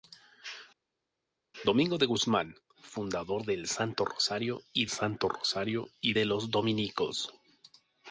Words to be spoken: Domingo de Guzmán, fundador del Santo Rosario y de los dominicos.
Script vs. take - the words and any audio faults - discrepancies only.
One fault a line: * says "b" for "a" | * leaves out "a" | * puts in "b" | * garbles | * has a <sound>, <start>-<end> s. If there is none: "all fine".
* puts in "Santo Rosario y"